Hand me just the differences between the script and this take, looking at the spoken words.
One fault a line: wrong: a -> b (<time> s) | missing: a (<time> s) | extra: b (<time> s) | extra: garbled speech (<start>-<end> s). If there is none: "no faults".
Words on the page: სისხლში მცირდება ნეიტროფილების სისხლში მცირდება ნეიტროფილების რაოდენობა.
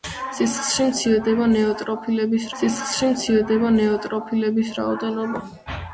no faults